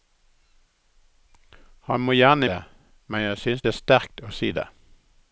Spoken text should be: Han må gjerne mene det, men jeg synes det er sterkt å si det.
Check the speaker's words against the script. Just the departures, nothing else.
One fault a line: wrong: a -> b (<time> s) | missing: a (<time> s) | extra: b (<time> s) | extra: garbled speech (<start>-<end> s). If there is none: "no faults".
missing: mene (2.5 s)